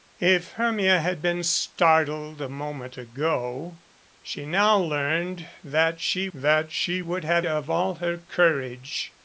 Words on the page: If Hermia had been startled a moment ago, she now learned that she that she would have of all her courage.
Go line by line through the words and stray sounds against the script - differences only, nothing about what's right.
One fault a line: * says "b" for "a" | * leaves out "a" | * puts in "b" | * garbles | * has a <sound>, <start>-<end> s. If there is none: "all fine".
all fine